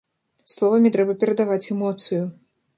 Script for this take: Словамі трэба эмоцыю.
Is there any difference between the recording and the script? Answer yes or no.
yes